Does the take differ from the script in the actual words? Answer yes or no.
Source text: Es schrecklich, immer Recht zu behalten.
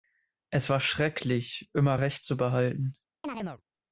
yes